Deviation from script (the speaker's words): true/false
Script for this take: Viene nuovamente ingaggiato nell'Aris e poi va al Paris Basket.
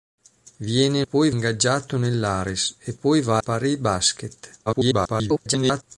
true